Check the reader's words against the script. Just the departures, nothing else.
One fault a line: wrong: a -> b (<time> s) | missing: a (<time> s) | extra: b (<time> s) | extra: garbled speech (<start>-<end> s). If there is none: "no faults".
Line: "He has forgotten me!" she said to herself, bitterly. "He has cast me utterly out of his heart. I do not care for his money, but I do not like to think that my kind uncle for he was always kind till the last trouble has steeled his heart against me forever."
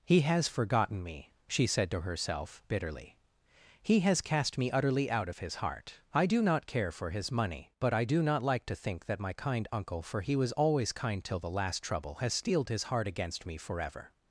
no faults